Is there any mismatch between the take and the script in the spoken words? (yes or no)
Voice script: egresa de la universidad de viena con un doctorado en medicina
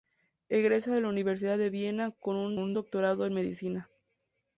yes